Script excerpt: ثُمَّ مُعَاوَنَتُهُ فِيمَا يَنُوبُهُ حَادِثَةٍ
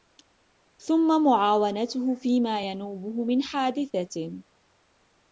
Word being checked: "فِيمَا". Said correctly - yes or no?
yes